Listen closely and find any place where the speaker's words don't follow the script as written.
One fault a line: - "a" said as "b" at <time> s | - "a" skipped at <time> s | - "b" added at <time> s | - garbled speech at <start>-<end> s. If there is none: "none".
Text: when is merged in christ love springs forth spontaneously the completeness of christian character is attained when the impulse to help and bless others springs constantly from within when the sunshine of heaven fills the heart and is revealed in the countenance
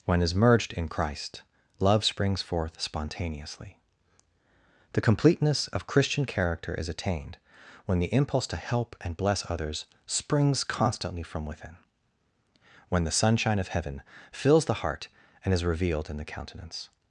none